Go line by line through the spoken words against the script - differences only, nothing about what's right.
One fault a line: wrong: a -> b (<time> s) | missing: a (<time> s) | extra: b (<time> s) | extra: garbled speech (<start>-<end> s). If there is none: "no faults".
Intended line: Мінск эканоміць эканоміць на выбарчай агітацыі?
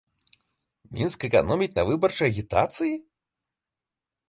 missing: эканоміць (1.8 s)